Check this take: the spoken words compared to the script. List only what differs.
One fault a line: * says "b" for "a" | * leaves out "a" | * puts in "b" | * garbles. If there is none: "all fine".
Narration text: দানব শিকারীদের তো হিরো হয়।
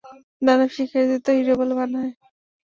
* puts in "বলে মানা"